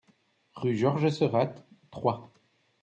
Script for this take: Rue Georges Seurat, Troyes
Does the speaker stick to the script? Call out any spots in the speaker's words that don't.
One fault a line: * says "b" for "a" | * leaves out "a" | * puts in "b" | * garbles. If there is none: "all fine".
all fine